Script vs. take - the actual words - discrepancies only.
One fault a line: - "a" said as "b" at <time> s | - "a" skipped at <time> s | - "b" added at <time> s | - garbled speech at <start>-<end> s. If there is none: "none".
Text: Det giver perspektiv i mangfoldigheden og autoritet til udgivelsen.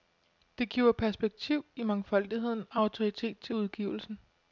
none